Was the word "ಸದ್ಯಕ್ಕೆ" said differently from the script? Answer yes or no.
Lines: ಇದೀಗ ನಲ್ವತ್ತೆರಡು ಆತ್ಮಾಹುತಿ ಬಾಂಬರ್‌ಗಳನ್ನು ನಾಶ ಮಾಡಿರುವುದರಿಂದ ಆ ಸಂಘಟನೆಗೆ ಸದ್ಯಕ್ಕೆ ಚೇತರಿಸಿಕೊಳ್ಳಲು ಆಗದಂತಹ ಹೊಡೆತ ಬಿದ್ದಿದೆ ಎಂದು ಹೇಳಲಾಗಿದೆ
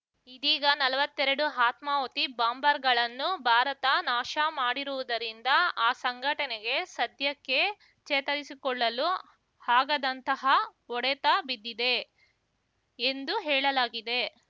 no